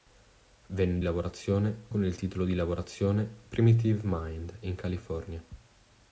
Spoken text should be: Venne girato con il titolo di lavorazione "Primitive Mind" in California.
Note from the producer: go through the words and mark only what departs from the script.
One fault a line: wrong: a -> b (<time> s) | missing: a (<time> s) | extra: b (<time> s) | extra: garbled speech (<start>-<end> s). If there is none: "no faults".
wrong: girato -> lavorazione (1.0 s)